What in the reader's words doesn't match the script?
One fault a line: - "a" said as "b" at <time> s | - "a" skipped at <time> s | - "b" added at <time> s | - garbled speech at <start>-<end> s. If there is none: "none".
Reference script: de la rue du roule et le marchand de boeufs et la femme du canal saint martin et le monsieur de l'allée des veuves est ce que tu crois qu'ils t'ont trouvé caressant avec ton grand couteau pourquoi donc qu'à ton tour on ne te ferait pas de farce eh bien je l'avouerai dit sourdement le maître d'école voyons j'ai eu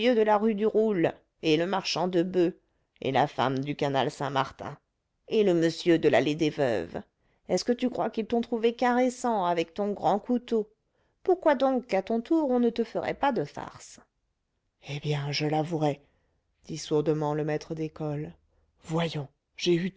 none